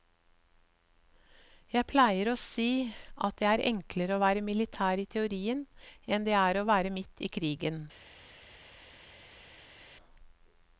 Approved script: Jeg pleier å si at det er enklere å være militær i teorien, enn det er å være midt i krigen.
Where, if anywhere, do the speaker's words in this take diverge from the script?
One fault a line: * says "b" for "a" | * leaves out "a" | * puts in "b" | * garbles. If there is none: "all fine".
all fine